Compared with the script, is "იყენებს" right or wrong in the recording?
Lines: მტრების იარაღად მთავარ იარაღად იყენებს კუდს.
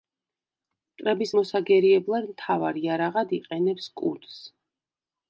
right